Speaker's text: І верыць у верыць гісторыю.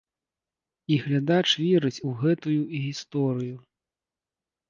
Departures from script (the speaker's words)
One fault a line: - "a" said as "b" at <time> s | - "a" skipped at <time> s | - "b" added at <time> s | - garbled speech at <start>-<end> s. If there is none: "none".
- "глядач" added at 1.0 s
- "верыць" said as "гэтую" at 2.2 s